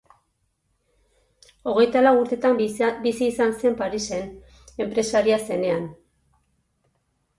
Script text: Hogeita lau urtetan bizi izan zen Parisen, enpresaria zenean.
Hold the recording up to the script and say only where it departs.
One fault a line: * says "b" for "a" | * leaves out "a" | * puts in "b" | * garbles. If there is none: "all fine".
all fine